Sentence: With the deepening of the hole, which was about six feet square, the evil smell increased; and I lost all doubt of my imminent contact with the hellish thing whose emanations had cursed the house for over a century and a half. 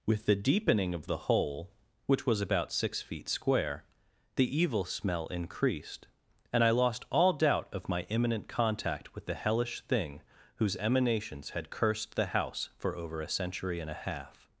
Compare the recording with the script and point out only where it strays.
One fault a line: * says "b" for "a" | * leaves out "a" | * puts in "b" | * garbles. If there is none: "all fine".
all fine